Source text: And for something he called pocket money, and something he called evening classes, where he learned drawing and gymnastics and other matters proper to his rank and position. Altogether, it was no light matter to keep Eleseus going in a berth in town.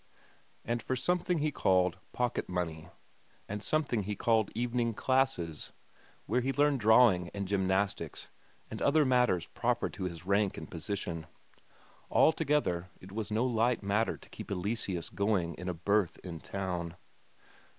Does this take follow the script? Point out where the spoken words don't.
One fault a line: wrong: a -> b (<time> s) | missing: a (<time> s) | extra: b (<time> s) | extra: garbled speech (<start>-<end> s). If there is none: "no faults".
no faults